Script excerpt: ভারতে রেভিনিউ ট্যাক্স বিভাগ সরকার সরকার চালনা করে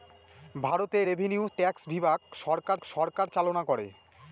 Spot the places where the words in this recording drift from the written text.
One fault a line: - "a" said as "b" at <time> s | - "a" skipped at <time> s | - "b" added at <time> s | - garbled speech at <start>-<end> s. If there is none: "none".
none